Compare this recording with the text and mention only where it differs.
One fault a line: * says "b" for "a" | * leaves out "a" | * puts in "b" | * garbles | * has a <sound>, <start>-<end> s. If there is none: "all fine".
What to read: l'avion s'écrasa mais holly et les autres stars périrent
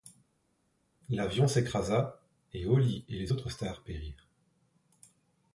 * says "et" for "mais"